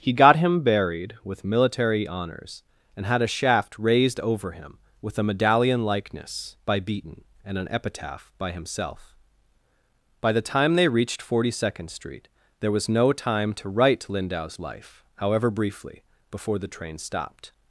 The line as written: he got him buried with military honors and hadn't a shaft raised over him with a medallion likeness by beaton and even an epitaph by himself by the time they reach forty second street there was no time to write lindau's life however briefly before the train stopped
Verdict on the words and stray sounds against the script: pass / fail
fail